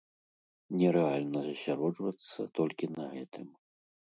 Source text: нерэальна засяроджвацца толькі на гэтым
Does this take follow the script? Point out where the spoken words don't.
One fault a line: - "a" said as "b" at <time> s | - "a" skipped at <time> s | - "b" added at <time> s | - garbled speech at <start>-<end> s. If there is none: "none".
none